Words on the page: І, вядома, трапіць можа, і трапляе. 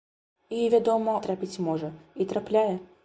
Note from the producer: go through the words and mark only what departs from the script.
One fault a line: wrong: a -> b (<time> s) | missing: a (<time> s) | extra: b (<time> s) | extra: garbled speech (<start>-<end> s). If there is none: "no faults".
no faults